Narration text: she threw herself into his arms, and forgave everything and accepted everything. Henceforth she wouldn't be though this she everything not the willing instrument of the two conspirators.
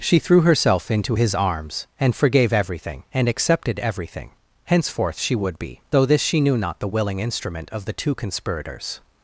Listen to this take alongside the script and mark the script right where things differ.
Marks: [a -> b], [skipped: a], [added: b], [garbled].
she threw herself into his arms, and forgave everything and accepted everything. Henceforth she [wouldn't -> would] be though this she [everything -> knew] not the willing instrument of the two conspirators.